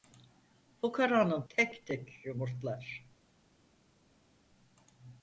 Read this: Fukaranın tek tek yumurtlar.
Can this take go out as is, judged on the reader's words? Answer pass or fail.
pass